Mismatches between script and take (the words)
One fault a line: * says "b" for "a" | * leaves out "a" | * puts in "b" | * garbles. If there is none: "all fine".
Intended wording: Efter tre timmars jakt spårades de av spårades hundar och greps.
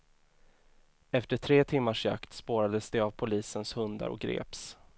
* says "polisens" for "spårades"